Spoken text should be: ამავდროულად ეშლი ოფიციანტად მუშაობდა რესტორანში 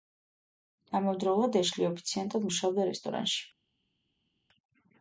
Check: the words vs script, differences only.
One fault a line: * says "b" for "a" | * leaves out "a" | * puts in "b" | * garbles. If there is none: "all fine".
all fine